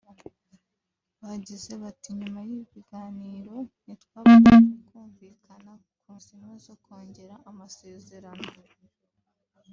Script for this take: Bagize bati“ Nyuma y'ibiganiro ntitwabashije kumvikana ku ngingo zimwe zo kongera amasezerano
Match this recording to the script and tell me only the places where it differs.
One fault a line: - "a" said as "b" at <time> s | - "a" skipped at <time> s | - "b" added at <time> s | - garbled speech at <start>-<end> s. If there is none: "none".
- "ngingo" skipped at 6.1 s